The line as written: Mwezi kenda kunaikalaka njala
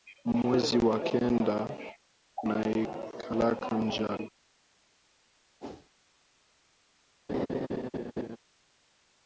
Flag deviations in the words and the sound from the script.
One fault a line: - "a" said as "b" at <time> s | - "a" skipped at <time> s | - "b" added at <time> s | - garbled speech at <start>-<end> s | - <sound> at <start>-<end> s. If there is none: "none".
- "wa" added at 0.8 s
- whoosh at 5.6-5.9 s
- laugh at 7.3-8.4 s